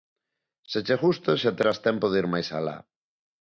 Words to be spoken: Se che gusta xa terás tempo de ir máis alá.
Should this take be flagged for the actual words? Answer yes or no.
no